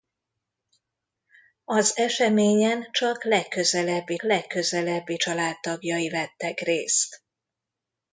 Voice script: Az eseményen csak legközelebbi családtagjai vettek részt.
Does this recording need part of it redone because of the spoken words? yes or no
yes